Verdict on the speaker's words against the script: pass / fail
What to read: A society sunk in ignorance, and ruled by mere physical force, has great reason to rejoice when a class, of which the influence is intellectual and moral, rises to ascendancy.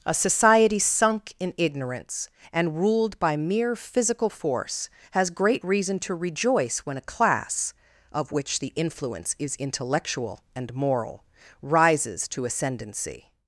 pass